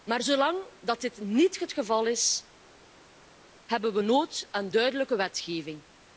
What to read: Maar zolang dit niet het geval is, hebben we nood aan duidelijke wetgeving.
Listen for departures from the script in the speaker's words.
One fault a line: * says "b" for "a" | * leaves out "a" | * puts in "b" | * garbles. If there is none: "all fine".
all fine